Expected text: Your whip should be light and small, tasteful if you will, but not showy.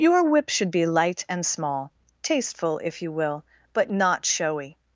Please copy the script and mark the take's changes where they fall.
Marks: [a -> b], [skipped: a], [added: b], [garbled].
Your whip should be light and small, tasteful if you will, but not showy.